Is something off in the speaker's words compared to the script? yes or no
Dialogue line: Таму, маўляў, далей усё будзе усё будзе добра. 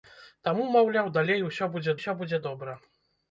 no